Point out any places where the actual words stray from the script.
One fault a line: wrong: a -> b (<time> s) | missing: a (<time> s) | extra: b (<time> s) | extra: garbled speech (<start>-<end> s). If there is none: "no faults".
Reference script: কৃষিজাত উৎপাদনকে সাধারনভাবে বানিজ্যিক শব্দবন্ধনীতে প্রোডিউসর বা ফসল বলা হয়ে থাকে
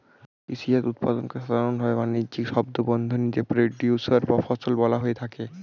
no faults